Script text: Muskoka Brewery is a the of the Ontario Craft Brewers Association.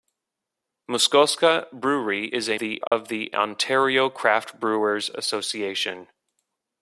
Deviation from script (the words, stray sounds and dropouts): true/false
true